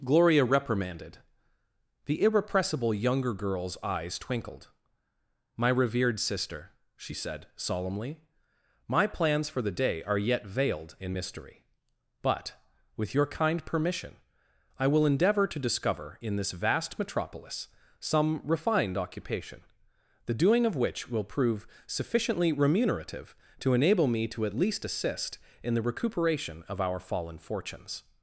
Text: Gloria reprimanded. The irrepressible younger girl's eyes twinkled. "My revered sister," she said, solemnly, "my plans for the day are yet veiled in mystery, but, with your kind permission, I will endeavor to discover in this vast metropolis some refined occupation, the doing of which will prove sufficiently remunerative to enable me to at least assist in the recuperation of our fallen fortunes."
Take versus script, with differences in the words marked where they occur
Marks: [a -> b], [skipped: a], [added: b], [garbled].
Gloria reprimanded. The irrepressible younger girl's eyes twinkled. "My revered sister," she said, solemnly, "my plans for the day are yet veiled in mystery, but, with your kind permission, I will endeavor to discover in this vast metropolis some refined occupation, the doing of which will prove sufficiently remunerative to enable me to at least assist in the recuperation of our fallen fortunes."